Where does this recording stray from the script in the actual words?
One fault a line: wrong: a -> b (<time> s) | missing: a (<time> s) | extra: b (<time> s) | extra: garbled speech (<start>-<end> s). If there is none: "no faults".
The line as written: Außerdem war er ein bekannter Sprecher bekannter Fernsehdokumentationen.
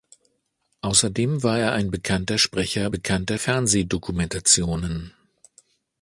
no faults